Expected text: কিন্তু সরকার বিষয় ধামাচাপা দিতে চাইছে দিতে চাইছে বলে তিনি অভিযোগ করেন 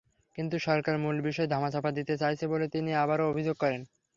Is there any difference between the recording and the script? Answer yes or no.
yes